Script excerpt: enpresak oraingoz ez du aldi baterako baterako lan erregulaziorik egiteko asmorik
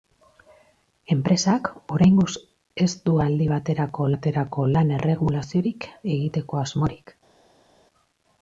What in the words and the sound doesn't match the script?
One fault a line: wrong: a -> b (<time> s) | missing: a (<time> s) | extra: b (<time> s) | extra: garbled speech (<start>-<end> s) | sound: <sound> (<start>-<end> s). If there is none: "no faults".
no faults